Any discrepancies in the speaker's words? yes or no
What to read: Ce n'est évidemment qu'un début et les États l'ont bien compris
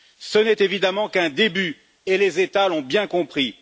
no